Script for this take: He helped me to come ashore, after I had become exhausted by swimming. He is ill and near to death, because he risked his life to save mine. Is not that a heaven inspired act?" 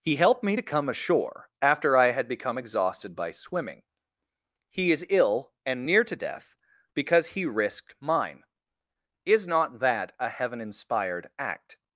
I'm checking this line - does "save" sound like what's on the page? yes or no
no